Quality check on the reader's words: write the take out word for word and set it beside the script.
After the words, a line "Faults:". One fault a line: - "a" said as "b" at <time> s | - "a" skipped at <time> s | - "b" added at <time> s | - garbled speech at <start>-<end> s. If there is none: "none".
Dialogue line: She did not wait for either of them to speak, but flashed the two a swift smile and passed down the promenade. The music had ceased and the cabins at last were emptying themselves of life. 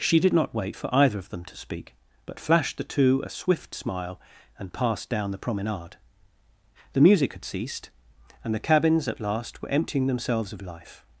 She did not wait for either of them to speak, but flashed the two a swift smile and passed down the promenade. The music had ceased and the cabins at last were emptying themselves of life.
Faults:
none